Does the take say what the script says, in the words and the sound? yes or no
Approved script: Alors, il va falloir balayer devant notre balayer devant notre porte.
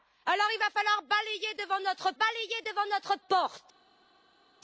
yes